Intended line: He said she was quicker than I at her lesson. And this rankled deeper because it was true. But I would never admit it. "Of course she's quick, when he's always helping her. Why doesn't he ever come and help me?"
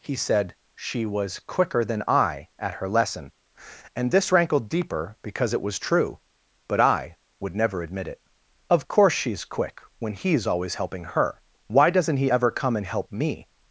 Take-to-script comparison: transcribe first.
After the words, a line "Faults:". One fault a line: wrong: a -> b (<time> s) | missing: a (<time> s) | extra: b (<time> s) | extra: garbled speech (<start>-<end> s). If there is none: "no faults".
He said she was quicker than I at her lesson. And this rankled deeper because it was true. But I would never admit it. "Of course she's quick, when he's always helping her. Why doesn't he ever come and help me?"
Faults:
no faults